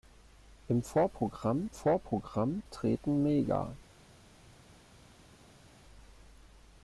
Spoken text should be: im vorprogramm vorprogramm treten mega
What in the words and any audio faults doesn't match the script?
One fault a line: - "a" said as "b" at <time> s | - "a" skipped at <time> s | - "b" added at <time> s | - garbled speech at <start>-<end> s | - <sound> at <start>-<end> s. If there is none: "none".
none